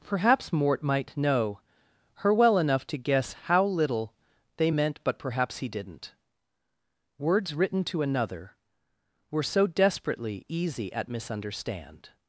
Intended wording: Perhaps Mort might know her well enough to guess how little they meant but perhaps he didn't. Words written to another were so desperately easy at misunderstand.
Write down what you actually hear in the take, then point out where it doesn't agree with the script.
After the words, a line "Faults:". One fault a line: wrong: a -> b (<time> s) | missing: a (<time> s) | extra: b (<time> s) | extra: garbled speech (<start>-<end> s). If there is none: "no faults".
Perhaps Mort might know her well enough to guess how little they meant but perhaps he didn't. Words written to another were so desperately easy at misunderstand.
Faults:
no faults